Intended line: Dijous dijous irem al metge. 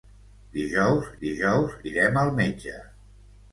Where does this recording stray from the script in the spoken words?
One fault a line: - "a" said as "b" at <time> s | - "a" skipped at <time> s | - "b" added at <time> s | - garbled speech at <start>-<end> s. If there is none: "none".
none